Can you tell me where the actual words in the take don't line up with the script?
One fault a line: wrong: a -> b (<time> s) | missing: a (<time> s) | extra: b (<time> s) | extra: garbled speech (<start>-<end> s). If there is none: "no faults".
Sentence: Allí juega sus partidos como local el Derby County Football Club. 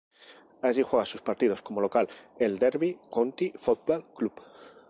no faults